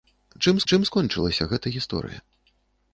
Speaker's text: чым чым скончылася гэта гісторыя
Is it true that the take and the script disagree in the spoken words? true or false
false